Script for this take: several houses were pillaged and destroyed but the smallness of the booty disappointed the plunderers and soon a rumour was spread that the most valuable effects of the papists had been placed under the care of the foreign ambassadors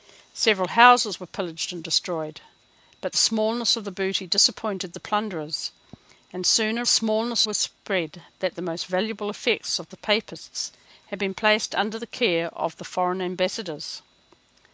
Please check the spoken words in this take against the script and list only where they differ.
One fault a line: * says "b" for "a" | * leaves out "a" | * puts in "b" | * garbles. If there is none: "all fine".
* says "smallness" for "rumour"